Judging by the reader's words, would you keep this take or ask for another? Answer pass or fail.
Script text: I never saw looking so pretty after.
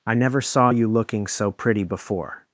fail